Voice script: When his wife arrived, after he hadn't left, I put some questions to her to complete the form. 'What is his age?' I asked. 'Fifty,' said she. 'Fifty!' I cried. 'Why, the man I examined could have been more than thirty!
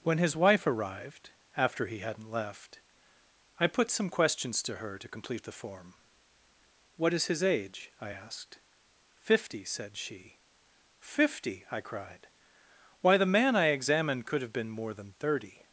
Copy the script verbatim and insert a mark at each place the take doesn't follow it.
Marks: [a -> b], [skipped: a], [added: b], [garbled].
When his wife arrived, after he hadn't left, I put some questions to her to complete the form. 'What is his age?' I asked. 'Fifty,' said she. 'Fifty!' I cried. 'Why, the man I examined could have been more than thirty!